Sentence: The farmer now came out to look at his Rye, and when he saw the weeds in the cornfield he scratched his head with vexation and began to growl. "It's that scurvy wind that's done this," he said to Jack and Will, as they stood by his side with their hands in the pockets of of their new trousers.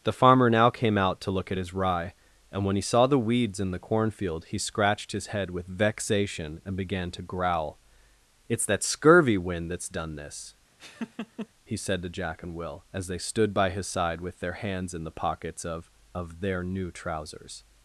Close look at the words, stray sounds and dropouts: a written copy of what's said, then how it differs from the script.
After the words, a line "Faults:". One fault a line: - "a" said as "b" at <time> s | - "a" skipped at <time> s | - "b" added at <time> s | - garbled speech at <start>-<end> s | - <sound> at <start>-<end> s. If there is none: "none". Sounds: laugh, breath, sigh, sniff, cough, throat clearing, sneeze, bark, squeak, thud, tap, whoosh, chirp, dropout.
The farmer now came out to look at his Rye, and when he saw the weeds in the cornfield he scratched his head with vexation and began to growl. "It's that scurvy wind that's done this," he said to Jack and Will, as they stood by his side with their hands in the pockets of of their new trousers.
Faults:
- laugh at 10.8-11.5 s